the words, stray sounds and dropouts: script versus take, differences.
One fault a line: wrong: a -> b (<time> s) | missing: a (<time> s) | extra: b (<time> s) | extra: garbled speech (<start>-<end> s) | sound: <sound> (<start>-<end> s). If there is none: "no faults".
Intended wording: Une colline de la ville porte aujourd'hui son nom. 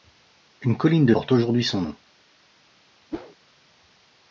missing: la ville (1.1 s)
sound: whoosh (3.1-3.4 s)